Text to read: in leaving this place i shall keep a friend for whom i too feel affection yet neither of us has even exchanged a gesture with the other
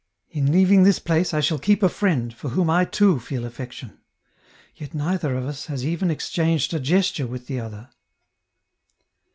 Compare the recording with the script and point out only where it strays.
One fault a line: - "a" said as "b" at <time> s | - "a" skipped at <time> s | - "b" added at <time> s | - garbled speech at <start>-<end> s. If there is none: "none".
none